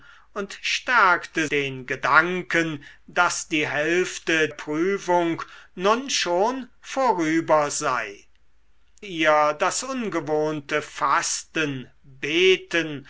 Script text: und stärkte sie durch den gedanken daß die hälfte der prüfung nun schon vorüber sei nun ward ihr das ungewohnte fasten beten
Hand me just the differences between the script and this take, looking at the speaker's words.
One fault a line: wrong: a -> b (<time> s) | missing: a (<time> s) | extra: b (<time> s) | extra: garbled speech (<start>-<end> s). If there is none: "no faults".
missing: sie durch (1.5 s)
missing: der (4.5 s)
missing: nun ward (8.3 s)